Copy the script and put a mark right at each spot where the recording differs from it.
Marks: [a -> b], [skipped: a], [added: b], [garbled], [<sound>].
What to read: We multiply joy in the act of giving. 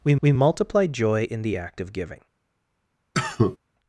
We [added: we] multiply joy in the act of giving. [cough]